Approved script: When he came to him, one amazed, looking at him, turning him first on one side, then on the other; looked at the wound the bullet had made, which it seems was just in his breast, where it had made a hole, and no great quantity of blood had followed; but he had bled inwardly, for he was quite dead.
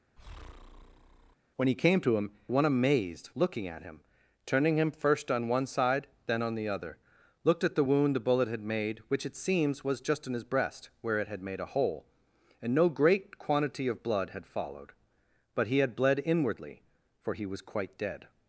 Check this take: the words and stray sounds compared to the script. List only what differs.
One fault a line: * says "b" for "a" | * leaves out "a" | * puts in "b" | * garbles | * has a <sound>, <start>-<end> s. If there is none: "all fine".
* has a breath, 0.2-1.4 s